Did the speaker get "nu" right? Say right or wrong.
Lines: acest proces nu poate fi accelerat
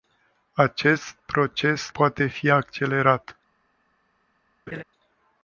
wrong